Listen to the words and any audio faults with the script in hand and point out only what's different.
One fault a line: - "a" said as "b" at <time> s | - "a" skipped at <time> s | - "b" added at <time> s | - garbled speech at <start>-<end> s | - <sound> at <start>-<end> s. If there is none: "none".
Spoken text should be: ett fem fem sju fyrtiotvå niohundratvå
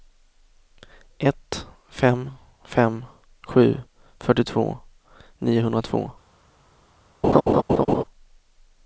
- laugh at 7.2-8.0 s